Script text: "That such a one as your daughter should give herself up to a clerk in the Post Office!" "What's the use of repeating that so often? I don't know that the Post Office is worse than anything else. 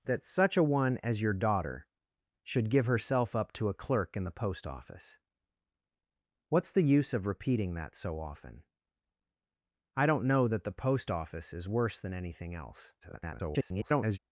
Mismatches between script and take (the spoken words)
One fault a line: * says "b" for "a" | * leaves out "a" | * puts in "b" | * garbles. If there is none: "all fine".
* garbles